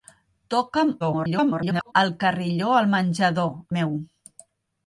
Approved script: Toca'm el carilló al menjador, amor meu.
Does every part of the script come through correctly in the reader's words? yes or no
no